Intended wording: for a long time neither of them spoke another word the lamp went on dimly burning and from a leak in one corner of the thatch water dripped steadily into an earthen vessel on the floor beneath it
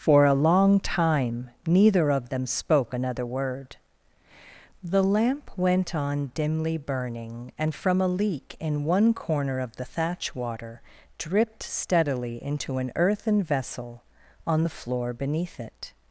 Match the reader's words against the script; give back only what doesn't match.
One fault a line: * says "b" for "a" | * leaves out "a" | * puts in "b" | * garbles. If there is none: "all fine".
all fine